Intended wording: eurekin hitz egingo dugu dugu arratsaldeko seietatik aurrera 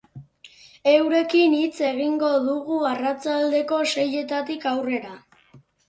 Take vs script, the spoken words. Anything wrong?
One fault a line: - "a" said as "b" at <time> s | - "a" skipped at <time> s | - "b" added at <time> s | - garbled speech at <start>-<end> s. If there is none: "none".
- "dugu" skipped at 2.8 s